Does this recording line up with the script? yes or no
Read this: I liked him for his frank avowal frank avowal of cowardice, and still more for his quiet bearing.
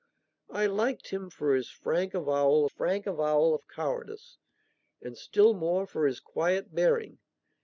yes